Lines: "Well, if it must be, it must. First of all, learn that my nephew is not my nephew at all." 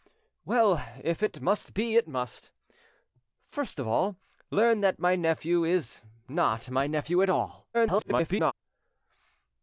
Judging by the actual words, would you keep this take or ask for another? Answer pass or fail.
fail